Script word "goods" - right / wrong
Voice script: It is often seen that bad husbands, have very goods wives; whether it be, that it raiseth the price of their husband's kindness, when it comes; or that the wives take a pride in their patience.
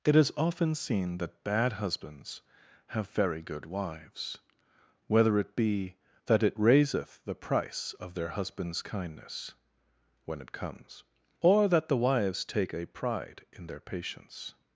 wrong